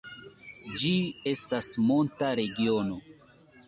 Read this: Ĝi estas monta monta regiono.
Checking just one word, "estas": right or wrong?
right